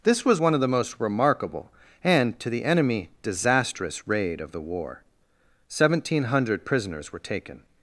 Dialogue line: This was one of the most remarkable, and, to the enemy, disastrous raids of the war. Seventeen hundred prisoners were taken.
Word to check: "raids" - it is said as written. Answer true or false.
false